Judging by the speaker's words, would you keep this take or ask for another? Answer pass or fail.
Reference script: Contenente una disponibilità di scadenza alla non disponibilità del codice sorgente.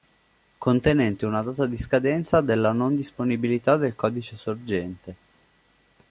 fail